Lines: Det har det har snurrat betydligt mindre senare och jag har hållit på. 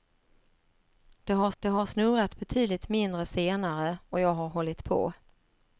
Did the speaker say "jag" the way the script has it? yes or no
yes